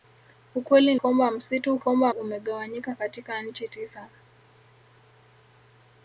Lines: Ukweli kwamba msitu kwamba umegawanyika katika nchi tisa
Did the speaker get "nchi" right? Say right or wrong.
right